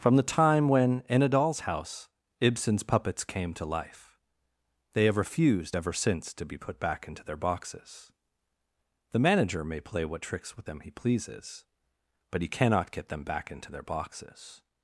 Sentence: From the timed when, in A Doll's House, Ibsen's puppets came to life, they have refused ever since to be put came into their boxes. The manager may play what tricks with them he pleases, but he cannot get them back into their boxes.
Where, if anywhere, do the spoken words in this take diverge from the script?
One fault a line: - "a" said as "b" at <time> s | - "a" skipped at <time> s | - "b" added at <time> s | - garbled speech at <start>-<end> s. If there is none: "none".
- "timed" said as "time" at 0.2 s
- "came" said as "back" at 6.8 s